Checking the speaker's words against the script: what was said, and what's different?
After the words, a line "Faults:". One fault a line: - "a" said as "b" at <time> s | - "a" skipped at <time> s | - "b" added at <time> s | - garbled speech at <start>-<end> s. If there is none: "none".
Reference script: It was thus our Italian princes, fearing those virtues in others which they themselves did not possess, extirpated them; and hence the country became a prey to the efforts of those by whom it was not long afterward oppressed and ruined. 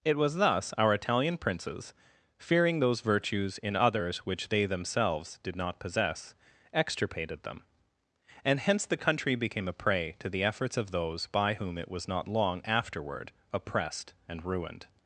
It was thus our Italian princes, fearing those virtues in others which they themselves did not possess, extirpated them; and hence the country became a prey to the efforts of those by whom it was not long afterward oppressed and ruined.
Faults:
none